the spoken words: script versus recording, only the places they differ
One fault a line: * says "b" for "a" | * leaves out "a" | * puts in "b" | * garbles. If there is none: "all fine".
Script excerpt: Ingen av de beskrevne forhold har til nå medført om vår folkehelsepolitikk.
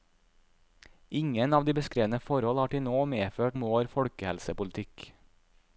all fine